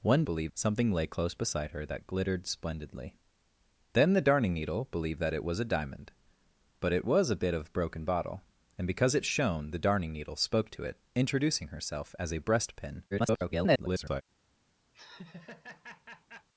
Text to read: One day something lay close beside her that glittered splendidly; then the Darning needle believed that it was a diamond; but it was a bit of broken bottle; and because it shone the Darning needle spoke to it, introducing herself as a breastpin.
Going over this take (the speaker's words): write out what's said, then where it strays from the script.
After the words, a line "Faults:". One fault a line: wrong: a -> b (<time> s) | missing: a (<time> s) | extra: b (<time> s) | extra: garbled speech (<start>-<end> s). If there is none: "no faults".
One believed something lay close beside her that glittered splendidly; then the Darning needle believed that it was a diamond; but it was a bit of broken bottle; and because it shone the Darning needle spoke to it, introducing herself as a breastpin. [garbled]
Faults:
wrong: day -> believed (0.2 s)
extra: garbled speech (13.1-14.2 s)